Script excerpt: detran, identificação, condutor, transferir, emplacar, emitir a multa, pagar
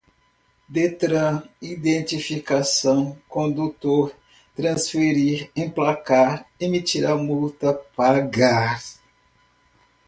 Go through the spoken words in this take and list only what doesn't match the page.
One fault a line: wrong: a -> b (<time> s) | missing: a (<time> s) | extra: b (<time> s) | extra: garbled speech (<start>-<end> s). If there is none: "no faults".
no faults